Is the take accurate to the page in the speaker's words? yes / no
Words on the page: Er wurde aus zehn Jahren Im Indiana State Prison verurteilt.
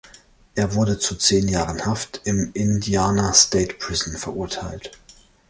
no